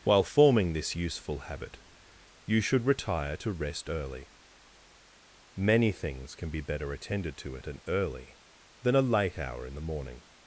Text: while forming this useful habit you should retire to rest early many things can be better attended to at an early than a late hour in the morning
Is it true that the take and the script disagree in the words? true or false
false